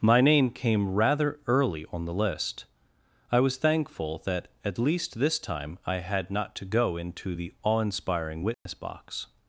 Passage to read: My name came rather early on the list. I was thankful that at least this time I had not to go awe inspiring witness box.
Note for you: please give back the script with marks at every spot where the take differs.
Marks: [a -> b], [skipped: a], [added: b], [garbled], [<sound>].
My name came rather early on the list. I was thankful that at least this time I had not to go [added: into the] awe inspiring witness [dropout] box.